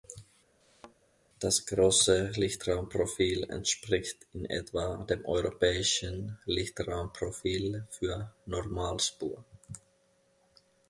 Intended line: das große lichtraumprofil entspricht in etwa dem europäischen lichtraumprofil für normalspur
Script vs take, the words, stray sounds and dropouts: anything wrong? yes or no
yes